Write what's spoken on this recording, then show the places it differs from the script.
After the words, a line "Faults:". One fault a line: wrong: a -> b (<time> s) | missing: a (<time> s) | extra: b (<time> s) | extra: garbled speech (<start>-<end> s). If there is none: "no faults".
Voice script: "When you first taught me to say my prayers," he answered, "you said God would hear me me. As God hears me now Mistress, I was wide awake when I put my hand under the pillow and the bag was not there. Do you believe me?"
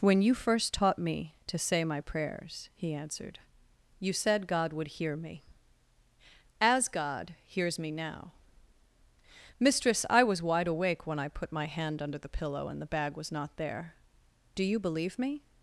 "When you first taught me to say my prayers," he answered, "you said God would hear me. As God hears me now Mistress, I was wide awake when I put my hand under the pillow and the bag was not there. Do you believe me?"
Faults:
missing: me (5.4 s)